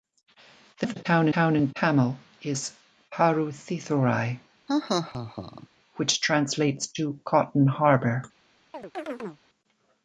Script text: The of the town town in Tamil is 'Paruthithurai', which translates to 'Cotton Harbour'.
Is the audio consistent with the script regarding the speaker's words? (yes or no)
yes